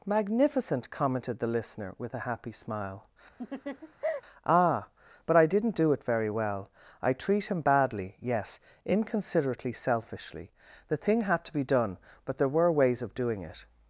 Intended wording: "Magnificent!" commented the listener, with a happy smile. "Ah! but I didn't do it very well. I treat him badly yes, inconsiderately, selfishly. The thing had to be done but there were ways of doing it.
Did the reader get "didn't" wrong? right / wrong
right